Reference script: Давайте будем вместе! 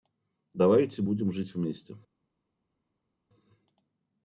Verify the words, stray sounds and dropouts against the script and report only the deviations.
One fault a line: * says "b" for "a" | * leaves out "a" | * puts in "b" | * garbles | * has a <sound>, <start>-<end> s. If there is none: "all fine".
* puts in "жить"